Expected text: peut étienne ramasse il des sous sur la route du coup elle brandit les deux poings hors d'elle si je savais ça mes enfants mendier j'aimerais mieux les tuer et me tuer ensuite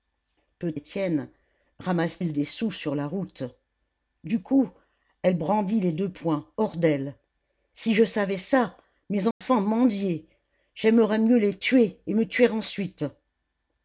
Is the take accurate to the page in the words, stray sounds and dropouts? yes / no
no